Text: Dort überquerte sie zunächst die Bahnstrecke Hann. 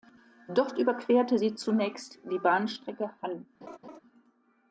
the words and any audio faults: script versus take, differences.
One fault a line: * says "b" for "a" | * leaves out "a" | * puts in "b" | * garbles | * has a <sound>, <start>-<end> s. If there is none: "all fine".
* has a laugh, 3.6-4.0 s